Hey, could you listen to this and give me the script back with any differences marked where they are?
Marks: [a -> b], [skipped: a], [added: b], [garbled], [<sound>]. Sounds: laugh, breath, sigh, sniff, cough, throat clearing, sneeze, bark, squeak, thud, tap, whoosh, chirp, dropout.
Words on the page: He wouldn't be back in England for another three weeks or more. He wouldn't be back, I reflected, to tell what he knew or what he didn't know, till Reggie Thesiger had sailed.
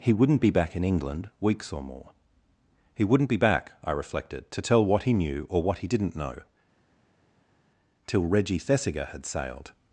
He wouldn't be back in England [skipped: for another three] weeks or more. He wouldn't be back, I reflected, to tell what he knew or what he didn't know, till Reggie Thesiger had sailed.